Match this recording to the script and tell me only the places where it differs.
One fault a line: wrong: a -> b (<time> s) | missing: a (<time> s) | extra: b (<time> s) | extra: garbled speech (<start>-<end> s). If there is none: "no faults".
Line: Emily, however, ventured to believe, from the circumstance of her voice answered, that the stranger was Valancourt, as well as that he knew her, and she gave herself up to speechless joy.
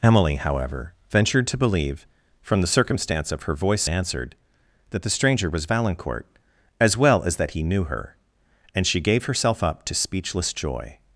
no faults